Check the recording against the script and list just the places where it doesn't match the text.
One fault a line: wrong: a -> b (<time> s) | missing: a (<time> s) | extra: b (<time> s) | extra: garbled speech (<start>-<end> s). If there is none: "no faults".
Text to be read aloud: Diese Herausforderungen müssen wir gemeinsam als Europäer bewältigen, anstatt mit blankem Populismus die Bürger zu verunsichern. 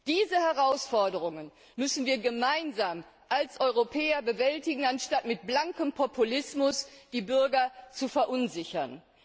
no faults